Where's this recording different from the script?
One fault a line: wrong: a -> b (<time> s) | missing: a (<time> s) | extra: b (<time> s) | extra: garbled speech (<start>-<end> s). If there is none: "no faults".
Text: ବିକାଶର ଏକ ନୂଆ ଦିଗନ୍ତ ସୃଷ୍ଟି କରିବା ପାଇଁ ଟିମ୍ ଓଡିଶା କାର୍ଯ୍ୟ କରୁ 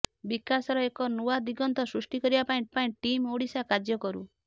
extra: ପାଇଁ (2.7 s)